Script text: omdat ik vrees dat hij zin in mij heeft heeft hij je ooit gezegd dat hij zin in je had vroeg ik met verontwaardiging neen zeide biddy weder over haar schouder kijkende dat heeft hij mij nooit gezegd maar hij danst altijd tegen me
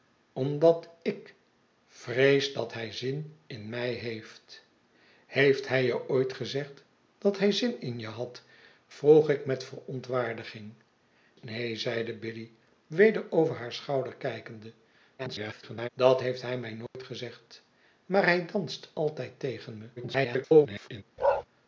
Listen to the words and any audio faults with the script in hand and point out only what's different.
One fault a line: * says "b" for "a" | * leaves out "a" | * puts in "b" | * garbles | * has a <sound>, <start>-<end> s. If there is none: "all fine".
* garbles
* has a dropout, 16.9-16.9 s
* garbles
* has a bark, 21.2-21.4 s